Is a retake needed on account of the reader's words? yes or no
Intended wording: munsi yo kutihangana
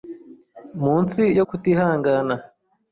no